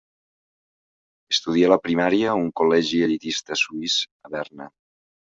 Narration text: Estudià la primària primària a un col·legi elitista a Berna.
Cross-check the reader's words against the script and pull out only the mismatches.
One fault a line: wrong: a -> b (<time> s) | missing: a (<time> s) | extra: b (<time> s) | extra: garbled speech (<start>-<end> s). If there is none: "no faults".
missing: primària (2.3 s)
extra: suís (3.6 s)